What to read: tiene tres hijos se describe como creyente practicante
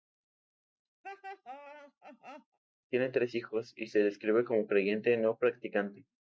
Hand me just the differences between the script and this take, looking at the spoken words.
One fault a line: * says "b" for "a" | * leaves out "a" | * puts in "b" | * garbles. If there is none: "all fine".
* puts in "y"
* puts in "no"